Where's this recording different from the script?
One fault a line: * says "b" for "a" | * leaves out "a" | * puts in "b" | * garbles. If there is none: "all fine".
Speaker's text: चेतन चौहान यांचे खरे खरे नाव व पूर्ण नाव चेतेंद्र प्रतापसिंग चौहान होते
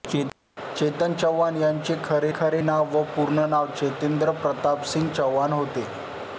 all fine